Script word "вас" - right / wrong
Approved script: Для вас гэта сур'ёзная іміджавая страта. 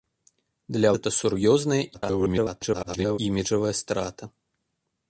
wrong